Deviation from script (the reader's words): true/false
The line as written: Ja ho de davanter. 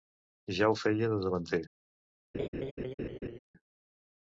true